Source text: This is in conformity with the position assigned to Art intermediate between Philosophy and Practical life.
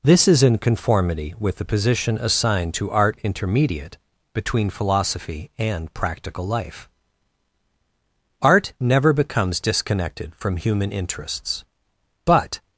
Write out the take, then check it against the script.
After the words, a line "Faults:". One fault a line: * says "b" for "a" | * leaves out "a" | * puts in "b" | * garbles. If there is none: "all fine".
This is in conformity with the position assigned to Art intermediate between Philosophy and Practical life. Art never becomes disconnected from human interests; but
Faults:
* puts in "Art never becomes disconnected from human interests but"